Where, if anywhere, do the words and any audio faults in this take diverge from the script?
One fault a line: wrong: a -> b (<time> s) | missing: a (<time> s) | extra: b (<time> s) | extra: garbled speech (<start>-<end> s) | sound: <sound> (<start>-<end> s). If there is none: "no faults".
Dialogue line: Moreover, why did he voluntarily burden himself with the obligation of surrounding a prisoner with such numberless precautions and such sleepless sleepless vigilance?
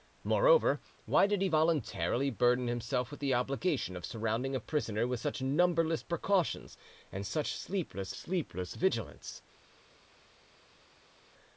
no faults